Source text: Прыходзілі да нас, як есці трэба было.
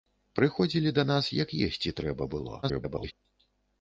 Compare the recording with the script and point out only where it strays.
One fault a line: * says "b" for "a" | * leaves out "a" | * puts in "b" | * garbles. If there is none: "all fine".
* garbles